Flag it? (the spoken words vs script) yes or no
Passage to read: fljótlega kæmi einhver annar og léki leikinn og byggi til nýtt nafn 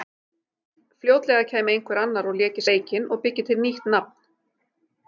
no